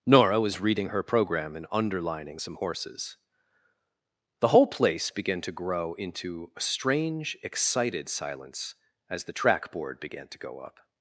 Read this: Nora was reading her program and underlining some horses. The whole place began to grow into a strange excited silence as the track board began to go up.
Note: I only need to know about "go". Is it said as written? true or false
true